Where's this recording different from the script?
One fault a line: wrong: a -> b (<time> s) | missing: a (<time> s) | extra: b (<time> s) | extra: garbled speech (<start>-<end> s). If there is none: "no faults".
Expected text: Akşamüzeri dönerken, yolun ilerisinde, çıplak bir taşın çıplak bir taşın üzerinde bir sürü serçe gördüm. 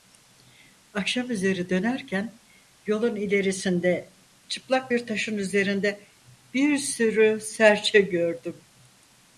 missing: çıplak bir taşın (5.4 s)